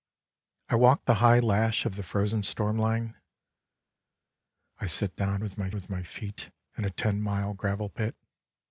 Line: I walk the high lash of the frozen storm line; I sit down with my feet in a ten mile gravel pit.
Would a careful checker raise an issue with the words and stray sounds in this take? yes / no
yes